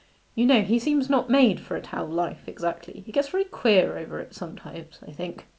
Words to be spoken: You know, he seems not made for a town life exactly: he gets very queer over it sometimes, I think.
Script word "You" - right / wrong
right